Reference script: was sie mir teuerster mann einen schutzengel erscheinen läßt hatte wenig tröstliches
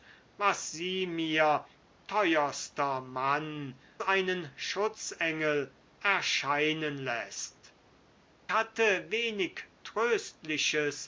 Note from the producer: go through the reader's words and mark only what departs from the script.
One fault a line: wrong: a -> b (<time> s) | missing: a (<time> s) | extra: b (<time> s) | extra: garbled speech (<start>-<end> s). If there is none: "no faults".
no faults